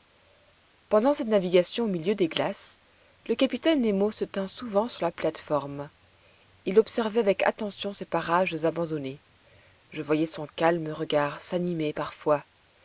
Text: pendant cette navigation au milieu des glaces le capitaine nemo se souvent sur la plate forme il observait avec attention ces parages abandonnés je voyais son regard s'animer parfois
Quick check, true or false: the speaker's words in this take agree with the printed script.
false